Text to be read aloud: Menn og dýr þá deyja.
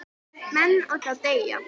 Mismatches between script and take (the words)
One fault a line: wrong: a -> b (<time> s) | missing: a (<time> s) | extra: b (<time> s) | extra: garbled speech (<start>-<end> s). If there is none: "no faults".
missing: dýr (1.0 s)